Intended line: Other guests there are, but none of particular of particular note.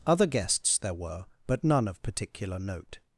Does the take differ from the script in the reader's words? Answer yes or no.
yes